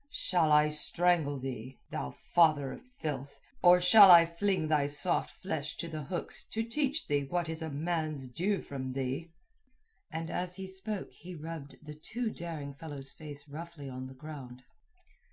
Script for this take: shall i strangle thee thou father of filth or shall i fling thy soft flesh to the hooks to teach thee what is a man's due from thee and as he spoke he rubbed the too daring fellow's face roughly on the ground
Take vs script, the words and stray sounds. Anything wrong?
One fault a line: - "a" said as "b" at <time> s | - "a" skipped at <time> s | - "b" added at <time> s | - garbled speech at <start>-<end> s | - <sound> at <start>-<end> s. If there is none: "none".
none